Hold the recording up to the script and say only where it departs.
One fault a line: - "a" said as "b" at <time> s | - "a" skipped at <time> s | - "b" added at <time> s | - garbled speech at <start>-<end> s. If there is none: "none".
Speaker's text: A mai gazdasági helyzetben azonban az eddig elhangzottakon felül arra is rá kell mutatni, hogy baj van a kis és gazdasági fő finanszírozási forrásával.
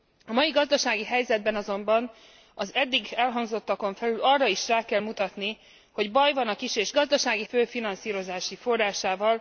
none